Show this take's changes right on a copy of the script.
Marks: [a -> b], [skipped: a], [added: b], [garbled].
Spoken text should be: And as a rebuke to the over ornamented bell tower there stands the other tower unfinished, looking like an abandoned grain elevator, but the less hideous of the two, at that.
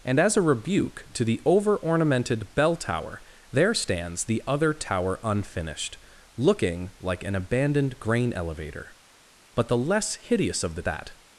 And as a rebuke to the over ornamented bell tower there stands the other tower unfinished, looking like an abandoned grain elevator, but the less hideous of the [skipped: two, at] that.